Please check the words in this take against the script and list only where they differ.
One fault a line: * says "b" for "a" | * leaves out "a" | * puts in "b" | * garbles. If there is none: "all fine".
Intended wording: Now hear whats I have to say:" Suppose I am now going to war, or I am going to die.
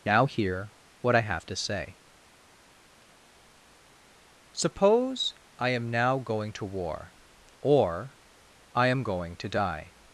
* says "what" for "whats"